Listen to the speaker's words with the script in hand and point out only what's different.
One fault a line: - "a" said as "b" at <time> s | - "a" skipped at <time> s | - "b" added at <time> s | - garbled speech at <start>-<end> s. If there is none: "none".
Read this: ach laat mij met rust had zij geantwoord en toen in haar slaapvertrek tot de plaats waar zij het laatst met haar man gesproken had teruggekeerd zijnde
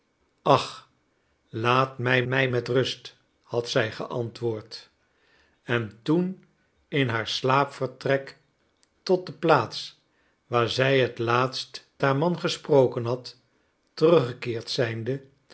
- "mij" added at 2.2 s
- "met" skipped at 11.9 s